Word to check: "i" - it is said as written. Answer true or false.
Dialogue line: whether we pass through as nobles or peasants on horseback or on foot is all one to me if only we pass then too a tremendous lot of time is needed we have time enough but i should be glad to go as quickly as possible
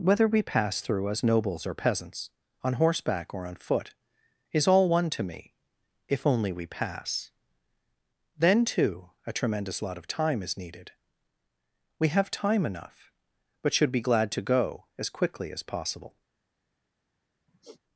false